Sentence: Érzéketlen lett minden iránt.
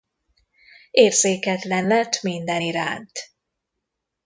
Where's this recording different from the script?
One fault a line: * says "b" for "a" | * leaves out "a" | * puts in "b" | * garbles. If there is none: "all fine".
all fine